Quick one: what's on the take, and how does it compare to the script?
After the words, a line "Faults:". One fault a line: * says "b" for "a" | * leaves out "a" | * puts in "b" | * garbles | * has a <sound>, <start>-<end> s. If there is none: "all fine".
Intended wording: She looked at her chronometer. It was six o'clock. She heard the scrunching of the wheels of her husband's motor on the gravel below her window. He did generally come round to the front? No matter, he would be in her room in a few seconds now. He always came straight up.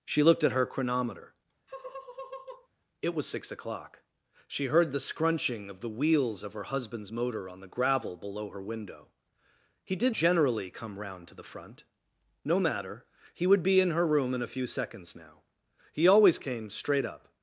She looked at her chronometer. It was six o'clock. She heard the scrunching of the wheels of her husband's motor on the gravel below her window. He did generally come round to the front? No matter, he would be in her room in a few seconds now. He always came straight up.
Faults:
* has a laugh, 1.7-2.7 s